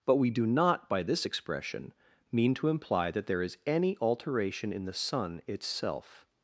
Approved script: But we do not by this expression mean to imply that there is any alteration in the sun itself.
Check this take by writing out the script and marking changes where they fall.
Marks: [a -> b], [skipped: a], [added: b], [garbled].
But we do not by this expression mean to imply that there is any alteration in the sun itself.